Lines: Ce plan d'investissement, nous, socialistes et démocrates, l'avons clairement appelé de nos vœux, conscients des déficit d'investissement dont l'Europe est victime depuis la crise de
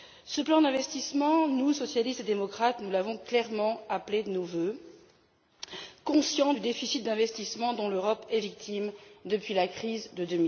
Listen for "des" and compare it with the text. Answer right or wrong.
wrong